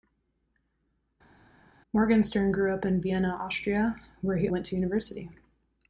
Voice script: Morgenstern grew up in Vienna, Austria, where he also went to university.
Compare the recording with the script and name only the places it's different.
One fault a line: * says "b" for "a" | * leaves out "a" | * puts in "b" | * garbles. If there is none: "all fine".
* leaves out "also"